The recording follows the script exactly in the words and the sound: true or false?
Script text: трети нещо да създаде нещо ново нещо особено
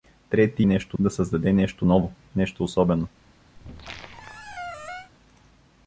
false